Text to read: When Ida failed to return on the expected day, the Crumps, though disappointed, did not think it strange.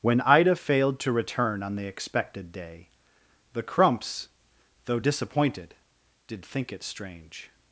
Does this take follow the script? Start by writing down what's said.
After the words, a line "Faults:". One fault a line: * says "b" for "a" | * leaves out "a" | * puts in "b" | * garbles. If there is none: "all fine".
When Ida failed to return on the expected day, the Crumps, though disappointed, did think it strange.
Faults:
* leaves out "not"